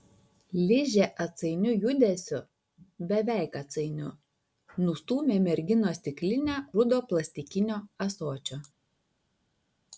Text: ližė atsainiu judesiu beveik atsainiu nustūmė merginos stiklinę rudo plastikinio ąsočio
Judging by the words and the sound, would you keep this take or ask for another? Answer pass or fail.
pass